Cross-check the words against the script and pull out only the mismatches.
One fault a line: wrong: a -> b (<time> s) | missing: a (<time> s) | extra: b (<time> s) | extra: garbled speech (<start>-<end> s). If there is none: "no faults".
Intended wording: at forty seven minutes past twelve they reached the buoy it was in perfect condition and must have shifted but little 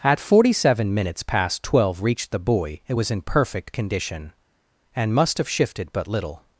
missing: they (2.0 s)